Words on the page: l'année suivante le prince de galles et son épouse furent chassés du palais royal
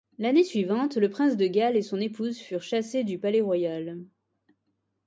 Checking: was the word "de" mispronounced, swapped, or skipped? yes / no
no